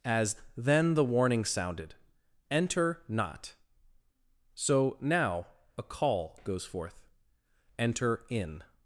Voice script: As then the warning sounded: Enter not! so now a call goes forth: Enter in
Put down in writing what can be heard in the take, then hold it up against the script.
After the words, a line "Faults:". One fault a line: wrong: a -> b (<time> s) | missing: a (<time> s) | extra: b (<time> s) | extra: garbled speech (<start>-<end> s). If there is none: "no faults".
As then the warning sounded: Enter not! so now a call goes forth: Enter in
Faults:
no faults